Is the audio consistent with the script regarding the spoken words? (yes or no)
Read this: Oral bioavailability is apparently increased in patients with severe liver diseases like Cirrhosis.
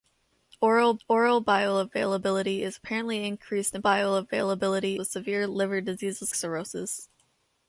no